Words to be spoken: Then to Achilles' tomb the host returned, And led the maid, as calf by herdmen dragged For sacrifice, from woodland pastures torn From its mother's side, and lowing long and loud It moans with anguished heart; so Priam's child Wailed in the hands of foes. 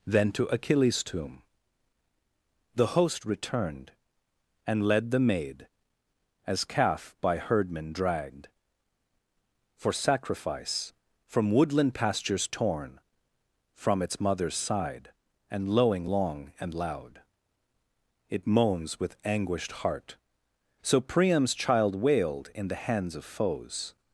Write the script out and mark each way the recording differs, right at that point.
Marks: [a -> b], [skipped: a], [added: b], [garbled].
Then to Achilles' tomb the host returned, And led the maid, as calf by herdmen dragged For sacrifice, from woodland pastures torn From its mother's side, and lowing long and loud It moans with anguished heart; so Priam's child Wailed in the hands of foes.